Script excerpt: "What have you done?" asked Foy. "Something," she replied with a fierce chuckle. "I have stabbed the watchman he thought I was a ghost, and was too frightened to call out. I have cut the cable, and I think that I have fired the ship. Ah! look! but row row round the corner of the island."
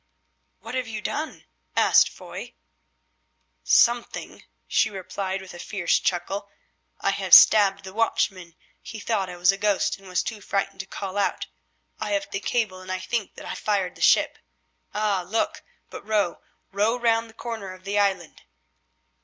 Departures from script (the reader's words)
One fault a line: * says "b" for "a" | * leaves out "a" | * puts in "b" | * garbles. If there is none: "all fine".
* leaves out "cut"
* leaves out "have"